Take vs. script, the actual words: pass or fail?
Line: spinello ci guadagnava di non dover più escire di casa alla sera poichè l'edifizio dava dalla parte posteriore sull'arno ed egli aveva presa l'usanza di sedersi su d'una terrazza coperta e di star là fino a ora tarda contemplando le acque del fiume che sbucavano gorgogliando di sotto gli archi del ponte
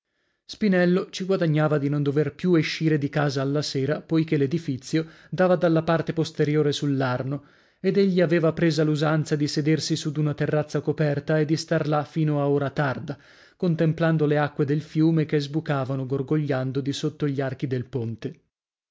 pass